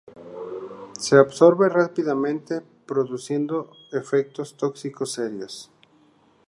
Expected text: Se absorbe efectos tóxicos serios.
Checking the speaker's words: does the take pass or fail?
fail